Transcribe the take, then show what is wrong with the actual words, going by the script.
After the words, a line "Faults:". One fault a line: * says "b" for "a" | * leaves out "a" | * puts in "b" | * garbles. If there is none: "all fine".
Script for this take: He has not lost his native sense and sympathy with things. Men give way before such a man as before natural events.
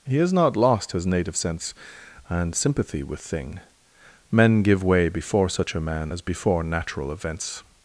He has not lost his native sense and sympathy with thing. Men give way before such a man as before natural events.
Faults:
* says "thing" for "things"